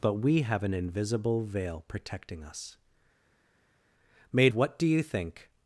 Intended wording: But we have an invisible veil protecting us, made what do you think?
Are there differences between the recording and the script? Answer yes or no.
no